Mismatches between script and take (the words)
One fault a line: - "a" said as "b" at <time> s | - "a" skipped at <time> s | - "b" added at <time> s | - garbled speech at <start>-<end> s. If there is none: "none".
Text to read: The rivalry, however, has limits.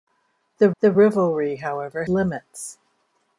- "the" added at 0.8 s
- "has" skipped at 2.0 s